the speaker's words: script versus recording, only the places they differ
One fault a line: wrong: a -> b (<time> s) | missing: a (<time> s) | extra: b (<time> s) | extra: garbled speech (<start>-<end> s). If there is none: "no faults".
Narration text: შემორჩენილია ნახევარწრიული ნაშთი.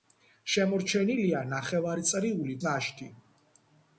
no faults